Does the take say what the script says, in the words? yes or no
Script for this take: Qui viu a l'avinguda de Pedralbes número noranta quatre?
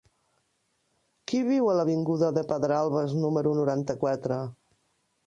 yes